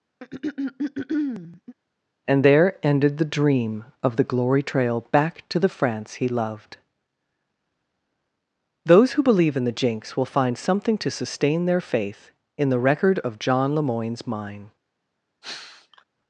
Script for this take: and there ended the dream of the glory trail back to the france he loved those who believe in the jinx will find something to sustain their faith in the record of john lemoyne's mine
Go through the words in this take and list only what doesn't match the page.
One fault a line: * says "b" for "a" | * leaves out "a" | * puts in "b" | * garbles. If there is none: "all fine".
all fine